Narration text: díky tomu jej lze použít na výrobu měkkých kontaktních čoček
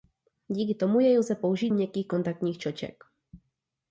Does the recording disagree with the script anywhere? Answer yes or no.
yes